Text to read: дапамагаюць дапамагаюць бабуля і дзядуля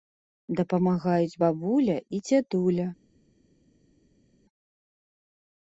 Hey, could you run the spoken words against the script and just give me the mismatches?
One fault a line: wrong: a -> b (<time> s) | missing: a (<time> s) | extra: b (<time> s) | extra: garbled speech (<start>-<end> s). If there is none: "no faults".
missing: дапамагаюць (1.4 s)